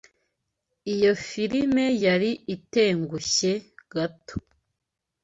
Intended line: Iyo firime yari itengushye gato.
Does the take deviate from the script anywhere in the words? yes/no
no